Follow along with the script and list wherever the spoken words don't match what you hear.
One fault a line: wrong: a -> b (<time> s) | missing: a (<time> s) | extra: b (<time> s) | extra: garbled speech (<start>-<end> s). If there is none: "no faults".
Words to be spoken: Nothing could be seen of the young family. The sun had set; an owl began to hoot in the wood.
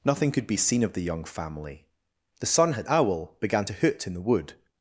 missing: set an (2.9 s)